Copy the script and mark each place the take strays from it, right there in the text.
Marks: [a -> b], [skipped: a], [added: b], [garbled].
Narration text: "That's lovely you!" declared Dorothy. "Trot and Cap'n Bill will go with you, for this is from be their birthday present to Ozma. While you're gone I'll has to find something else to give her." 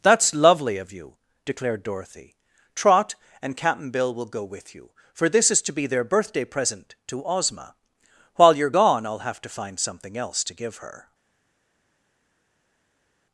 "That's lovely [added: of] you!" declared Dorothy. "Trot and Cap'n Bill will go with you, for this is [from -> to] be their birthday present to Ozma. While you're gone I'll [has -> have] to find something else to give her."